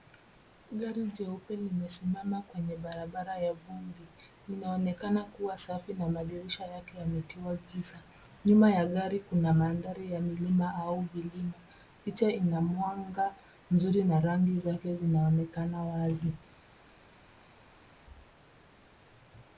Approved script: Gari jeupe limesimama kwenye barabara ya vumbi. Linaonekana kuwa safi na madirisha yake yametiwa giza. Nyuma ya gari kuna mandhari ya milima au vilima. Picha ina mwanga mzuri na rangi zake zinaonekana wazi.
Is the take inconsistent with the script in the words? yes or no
no